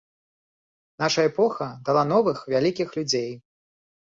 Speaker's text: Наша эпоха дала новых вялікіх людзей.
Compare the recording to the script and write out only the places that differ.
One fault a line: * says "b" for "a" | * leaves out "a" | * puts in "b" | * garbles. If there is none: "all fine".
all fine